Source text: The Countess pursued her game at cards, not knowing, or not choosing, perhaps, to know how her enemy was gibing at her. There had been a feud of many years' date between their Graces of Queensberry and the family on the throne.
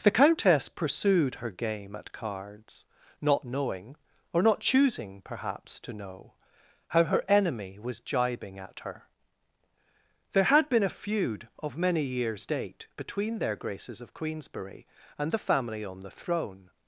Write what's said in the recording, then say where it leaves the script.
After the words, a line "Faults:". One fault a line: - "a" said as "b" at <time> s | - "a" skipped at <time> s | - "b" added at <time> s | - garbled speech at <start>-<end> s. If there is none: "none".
The Countess pursued her game at cards, not knowing, or not choosing, perhaps, to know how her enemy was gibing at her. There had been a feud of many years' date between their Graces of Queensberry and the family on the throne.
Faults:
none